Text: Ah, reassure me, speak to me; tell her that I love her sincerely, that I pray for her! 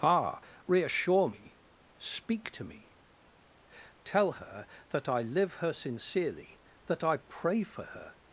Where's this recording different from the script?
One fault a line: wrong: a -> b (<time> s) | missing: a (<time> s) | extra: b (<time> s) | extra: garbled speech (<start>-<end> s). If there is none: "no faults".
wrong: love -> live (5.2 s)